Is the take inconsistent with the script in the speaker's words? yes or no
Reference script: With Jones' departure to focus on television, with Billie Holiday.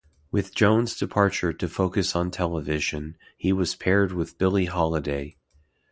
yes